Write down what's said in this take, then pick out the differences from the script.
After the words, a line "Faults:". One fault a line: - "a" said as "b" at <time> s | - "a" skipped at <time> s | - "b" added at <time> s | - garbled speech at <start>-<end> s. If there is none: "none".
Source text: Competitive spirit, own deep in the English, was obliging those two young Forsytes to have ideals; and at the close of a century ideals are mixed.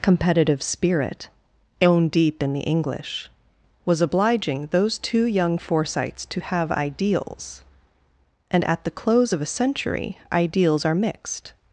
Competitive spirit, own deep in the English, was obliging those two young Forsytes to have ideals; and at the close of a century ideals are mixed.
Faults:
none